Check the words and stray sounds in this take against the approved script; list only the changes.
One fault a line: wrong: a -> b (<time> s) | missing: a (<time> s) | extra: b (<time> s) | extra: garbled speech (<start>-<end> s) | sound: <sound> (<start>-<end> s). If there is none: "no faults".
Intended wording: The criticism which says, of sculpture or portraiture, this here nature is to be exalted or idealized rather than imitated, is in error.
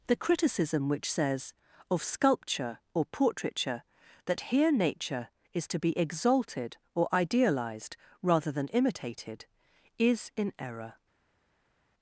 wrong: this -> that (4.2 s)